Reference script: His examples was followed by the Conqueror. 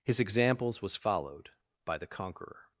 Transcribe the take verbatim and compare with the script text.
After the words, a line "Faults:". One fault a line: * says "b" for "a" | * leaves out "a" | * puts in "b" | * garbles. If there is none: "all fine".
His examples was followed by the Conqueror.
Faults:
all fine